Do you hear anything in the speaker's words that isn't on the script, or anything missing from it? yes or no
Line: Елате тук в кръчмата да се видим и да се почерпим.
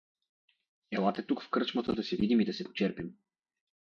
no